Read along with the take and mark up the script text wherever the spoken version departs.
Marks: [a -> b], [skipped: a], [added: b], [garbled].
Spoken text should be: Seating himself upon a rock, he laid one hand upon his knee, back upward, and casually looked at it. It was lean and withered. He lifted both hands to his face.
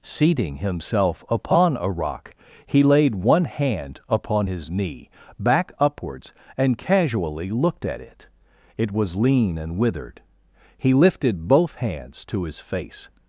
Seating himself upon a rock, he laid one hand upon his knee, back [upward, -> upwards] and casually looked at it. It was lean and withered. He lifted both hands to his face.